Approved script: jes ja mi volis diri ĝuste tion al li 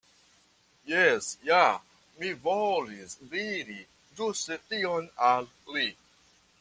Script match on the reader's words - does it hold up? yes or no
yes